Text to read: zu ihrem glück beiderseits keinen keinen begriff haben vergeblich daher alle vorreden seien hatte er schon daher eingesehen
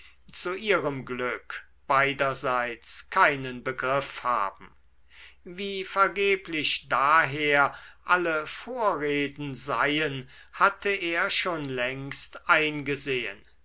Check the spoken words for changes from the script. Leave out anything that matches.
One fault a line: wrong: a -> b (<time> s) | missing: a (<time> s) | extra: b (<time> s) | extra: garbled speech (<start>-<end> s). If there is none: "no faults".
missing: keinen (3.6 s)
extra: wie (5.4 s)
wrong: daher -> längst (11.7 s)